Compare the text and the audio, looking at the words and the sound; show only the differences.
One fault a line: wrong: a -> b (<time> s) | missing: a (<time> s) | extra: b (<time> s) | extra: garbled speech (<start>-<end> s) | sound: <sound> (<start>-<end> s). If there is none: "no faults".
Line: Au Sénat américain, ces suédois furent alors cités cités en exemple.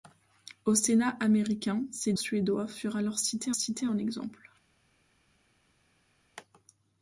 no faults